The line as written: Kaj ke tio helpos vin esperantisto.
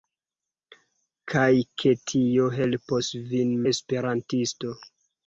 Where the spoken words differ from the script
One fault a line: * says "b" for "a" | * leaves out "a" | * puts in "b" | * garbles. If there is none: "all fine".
all fine